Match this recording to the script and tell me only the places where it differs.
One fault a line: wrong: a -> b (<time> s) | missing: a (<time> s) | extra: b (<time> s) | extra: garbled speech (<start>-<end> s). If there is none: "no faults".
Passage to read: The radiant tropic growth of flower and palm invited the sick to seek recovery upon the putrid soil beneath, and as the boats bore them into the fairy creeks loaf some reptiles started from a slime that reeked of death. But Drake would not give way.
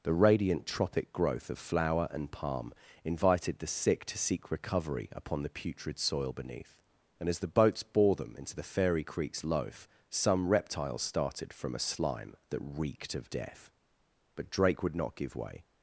no faults